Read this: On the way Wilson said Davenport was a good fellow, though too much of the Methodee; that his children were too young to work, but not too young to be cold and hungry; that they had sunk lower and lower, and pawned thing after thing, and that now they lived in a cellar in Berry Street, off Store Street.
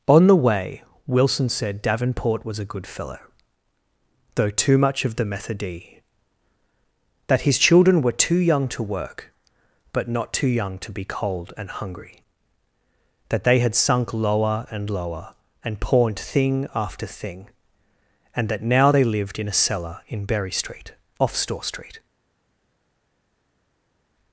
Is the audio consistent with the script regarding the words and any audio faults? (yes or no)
yes